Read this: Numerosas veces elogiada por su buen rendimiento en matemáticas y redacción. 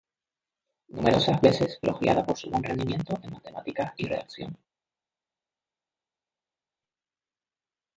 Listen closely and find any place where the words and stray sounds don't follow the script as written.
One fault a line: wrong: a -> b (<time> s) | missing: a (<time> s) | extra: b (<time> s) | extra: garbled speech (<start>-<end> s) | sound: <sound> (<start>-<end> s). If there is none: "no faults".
no faults